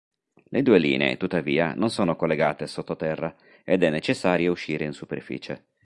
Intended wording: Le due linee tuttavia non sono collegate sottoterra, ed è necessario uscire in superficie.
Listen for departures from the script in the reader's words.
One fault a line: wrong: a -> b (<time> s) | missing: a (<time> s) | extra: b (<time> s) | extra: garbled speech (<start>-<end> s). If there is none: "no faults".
no faults